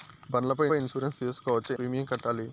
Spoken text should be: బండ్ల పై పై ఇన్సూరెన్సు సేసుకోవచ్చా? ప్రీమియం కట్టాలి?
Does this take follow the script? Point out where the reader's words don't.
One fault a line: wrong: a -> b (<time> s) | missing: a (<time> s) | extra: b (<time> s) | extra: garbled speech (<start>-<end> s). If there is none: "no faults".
no faults